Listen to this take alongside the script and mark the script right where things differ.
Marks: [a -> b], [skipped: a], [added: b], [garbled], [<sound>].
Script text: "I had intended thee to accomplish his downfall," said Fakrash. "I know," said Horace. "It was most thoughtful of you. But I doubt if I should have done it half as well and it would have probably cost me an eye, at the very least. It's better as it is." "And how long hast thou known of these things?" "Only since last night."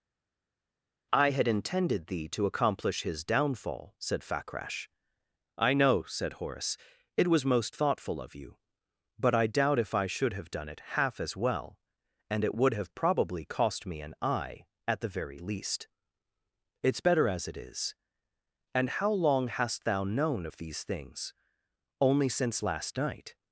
"I had intended thee to accomplish his downfall," said Fakrash. "I know," said Horace. "It was most thoughtful of you. But I doubt if I should have done it half as well and it would have probably cost me an eye, at the very least. It's better as it is." "And how long hast thou known of these things?" "Only since last night."